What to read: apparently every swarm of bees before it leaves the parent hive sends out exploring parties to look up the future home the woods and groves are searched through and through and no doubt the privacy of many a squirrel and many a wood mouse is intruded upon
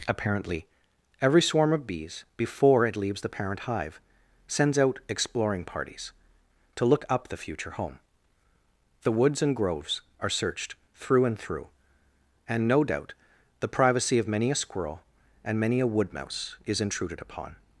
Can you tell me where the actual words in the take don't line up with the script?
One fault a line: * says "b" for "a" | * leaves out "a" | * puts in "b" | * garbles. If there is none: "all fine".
all fine